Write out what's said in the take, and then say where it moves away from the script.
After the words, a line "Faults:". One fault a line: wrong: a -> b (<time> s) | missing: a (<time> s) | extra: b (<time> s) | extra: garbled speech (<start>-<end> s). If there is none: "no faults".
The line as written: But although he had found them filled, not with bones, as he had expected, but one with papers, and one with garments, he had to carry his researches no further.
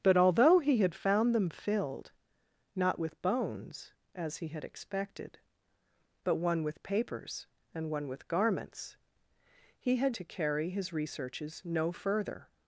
But although he had found them filled, not with bones, as he had expected, but one with papers, and one with garments, he had to carry his researches no further.
Faults:
no faults